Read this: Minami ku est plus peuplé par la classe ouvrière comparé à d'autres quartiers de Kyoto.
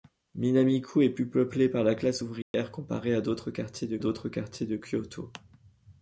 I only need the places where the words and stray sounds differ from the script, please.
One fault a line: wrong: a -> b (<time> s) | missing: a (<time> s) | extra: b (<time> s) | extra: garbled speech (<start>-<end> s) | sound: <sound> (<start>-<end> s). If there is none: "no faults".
sound: dropout (2.4-2.5 s)
extra: d'autres quartiers de (4.0 s)